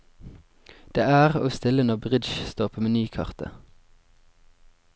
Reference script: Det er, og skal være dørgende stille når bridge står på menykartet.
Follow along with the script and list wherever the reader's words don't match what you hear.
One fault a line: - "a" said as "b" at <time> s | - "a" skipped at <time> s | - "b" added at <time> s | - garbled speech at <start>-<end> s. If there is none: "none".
- "skal være dørgende" skipped at 1.5 s